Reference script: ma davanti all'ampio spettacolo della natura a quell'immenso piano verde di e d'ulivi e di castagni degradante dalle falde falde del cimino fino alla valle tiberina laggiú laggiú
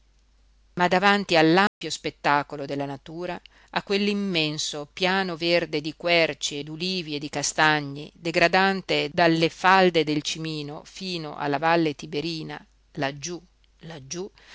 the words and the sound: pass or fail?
fail